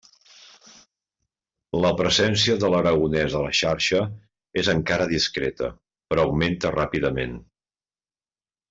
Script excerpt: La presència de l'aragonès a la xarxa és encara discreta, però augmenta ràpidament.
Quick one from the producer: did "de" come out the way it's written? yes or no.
yes